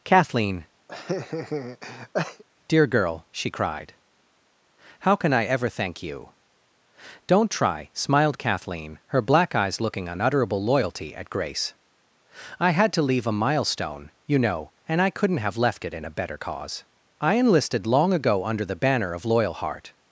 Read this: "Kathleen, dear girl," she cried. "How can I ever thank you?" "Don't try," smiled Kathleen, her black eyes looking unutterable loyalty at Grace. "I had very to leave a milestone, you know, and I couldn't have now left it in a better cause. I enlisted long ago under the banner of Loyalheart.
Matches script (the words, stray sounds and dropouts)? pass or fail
fail